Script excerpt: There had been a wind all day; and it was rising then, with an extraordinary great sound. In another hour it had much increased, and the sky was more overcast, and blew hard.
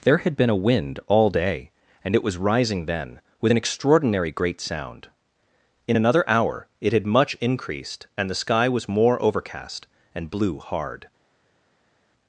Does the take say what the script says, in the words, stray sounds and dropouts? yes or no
yes